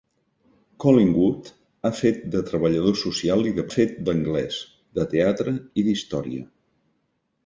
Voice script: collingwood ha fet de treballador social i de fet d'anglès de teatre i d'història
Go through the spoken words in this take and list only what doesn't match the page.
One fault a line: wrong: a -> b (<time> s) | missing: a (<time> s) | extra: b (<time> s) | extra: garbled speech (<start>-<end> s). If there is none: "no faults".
no faults